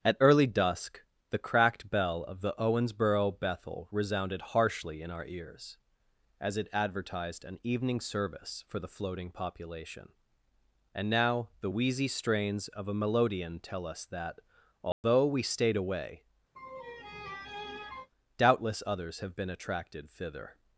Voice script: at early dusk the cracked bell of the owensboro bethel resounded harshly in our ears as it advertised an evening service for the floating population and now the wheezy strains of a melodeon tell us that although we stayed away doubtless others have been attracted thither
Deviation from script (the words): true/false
false